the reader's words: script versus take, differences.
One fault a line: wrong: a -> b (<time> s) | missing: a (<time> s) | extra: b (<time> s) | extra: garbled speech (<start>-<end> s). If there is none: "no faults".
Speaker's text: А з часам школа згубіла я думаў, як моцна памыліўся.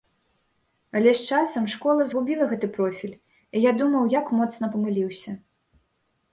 wrong: А -> Але (1.0 s)
extra: гэты профіль і (2.5 s)